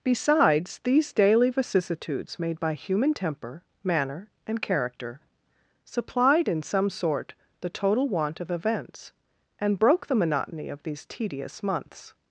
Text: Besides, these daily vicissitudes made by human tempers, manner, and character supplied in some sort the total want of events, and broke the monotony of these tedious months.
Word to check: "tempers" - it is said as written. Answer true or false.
false